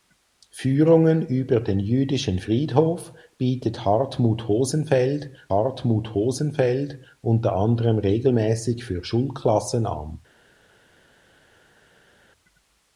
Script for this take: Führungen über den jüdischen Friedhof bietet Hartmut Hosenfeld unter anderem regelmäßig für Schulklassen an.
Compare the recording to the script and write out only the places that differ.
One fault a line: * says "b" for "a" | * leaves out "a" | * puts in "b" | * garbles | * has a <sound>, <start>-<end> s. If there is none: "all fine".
* puts in "Hartmut Hosenfeld"